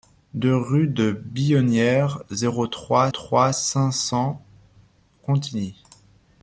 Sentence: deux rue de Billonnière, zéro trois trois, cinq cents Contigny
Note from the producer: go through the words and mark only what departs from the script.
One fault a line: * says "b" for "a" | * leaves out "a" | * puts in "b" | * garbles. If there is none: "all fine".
all fine